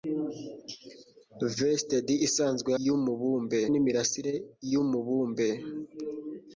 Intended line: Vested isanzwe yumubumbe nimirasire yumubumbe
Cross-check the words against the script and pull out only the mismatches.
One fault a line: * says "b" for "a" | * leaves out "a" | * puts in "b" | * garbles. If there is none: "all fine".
all fine